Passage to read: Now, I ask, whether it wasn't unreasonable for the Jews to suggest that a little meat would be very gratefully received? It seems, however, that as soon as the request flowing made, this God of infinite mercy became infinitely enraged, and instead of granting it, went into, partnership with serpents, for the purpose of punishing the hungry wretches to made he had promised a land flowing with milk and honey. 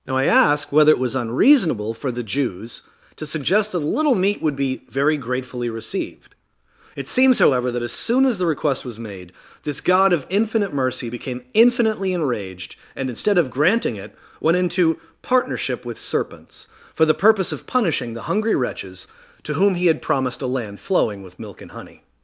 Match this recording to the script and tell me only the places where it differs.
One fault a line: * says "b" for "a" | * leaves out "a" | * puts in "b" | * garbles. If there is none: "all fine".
* says "was" for "wasn't"
* says "was" for "flowing"
* says "whom" for "made"